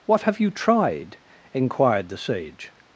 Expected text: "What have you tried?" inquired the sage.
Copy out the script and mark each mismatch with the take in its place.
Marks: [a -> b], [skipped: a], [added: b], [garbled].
"What have you tried?" inquired the sage.